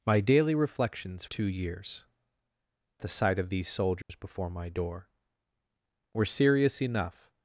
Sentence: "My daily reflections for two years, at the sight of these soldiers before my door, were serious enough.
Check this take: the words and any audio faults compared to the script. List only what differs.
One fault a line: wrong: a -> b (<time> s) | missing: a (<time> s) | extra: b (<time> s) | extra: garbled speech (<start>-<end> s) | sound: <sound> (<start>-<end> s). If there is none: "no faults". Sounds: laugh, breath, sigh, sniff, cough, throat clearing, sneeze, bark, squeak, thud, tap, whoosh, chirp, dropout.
missing: for (1.2 s)
missing: at (2.0 s)
sound: dropout (4.0-4.1 s)